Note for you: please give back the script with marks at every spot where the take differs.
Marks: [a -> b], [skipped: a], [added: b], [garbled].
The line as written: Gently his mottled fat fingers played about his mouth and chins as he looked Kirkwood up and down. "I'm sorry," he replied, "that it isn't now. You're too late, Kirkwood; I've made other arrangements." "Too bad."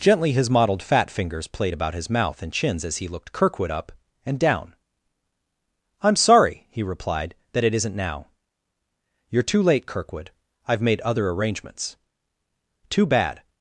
Gently his mottled fat fingers played about his mouth and chins as he looked Kirkwood up and down. "I'm sorry," he replied, "that it isn't now. You're too late, Kirkwood; I've made other arrangements." "Too bad."